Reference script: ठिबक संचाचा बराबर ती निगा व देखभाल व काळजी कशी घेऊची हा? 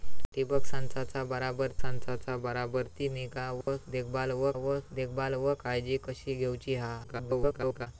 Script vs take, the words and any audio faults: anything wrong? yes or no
yes